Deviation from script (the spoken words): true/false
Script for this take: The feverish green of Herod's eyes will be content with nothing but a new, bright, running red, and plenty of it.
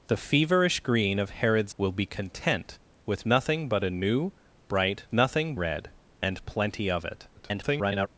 true